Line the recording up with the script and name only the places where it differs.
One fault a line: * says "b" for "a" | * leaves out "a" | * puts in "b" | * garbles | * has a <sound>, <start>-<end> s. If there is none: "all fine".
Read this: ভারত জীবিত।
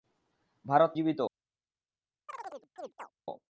* has a chirp, 2.3-3.1 s